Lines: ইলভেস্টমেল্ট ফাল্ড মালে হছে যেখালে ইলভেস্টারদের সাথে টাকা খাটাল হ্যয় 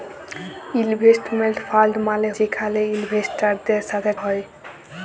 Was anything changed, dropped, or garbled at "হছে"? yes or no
yes